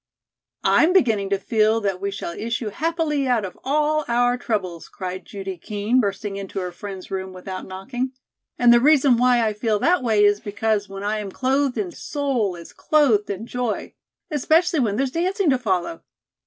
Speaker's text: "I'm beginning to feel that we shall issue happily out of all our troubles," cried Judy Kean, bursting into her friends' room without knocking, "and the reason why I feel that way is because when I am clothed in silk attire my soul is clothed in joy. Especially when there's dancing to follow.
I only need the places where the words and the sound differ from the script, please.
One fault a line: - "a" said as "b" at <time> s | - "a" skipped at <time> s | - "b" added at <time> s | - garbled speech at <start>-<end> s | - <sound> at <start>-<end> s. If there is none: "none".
- "silk attire my" skipped at 11.9 s